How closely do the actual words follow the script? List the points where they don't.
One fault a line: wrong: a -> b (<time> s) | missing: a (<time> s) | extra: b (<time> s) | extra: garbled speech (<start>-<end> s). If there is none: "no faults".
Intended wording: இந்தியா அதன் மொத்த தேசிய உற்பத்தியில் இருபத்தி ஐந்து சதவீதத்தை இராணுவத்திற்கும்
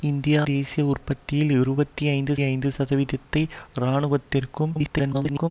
missing: அதன் மொத்த (0.4 s)
extra: ஐந்து (2.4 s)
extra: garbled speech (4.7-5.5 s)